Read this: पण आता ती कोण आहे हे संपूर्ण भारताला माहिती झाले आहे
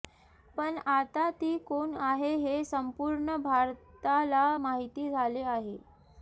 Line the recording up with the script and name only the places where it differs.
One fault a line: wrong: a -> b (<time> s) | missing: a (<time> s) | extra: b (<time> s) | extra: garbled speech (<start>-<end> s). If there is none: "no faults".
no faults